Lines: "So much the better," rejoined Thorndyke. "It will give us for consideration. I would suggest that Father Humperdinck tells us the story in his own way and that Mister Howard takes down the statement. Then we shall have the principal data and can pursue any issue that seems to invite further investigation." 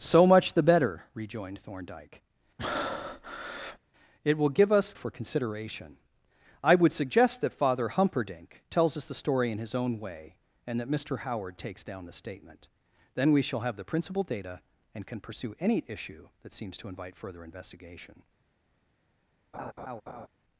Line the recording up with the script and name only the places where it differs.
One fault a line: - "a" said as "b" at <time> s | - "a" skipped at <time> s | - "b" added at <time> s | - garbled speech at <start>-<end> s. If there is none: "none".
none